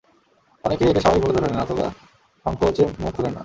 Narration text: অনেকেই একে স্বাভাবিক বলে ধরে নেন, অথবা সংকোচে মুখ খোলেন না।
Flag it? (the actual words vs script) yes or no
no